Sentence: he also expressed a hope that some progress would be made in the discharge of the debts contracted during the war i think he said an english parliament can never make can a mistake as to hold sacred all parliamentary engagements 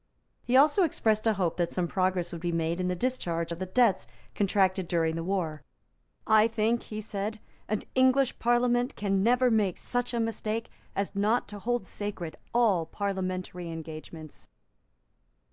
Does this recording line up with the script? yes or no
no